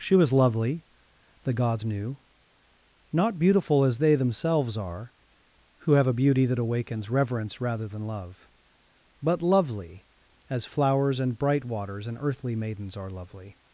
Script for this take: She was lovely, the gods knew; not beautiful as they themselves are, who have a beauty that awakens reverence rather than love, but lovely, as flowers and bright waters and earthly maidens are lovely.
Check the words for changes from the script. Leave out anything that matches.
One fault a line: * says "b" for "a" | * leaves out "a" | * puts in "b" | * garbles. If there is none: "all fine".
all fine